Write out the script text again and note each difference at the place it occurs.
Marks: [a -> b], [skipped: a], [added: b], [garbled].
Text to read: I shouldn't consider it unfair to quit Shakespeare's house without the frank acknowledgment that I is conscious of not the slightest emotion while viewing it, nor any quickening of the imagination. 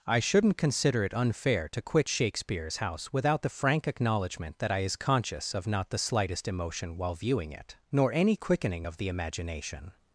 I shouldn't consider it unfair to quit Shakespeare's house without the frank acknowledgment that I is conscious of not the slightest emotion while viewing it, nor any quickening of the imagination.